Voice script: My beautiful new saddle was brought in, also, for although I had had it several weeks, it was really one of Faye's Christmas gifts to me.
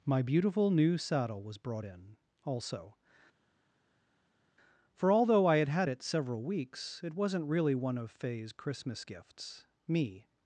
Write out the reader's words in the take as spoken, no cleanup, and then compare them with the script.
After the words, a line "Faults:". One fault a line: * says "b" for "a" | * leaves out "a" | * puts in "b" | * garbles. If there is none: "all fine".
My beautiful new saddle was brought in, also, for although I had had it several weeks, it wasn't really one of Faye's Christmas gifts me.
Faults:
* says "wasn't" for "was"
* leaves out "to"